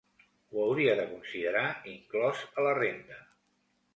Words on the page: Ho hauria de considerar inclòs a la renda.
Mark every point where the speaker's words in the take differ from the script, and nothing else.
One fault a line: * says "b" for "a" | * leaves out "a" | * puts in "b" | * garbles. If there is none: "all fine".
all fine